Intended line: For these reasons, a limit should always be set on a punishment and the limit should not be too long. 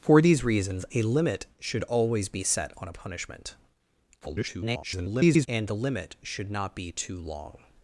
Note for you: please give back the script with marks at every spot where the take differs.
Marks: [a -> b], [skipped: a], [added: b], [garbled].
For these reasons, a limit should always be set on a punishment [garbled] and the limit should not be too long.